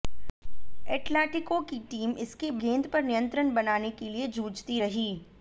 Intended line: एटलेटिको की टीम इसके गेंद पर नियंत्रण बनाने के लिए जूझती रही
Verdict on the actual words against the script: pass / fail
pass